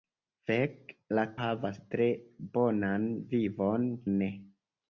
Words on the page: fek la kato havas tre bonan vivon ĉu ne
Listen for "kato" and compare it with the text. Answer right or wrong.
wrong